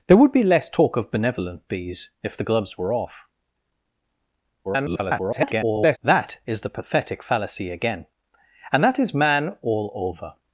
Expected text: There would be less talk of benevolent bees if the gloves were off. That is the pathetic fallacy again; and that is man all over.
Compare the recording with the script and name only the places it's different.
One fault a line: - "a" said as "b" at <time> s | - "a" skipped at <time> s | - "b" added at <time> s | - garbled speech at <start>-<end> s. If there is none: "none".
- garbled speech at 4.6-6.0 s